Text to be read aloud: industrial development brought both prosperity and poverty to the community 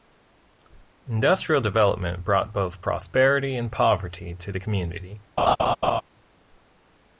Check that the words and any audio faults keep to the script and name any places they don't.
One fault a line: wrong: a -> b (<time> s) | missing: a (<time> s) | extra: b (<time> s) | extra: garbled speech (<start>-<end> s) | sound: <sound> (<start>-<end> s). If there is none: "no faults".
sound: laugh (5.4-6.0 s)